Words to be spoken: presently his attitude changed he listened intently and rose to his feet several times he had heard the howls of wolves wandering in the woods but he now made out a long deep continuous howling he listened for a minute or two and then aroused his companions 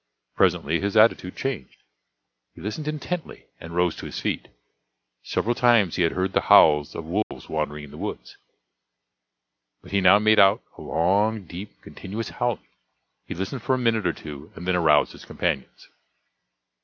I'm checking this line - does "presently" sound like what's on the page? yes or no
yes